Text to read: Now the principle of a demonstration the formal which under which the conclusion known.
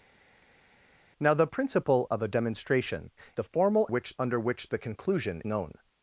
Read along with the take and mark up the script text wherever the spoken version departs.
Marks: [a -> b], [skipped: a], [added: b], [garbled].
Now the principle of a demonstration the formal which under which the conclusion known.